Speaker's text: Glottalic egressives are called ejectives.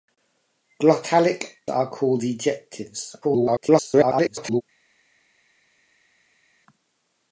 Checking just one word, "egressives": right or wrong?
wrong